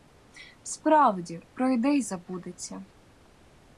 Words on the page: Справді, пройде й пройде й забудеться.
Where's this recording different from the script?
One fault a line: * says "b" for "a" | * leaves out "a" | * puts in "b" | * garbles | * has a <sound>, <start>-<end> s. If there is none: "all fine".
* leaves out "пройде й"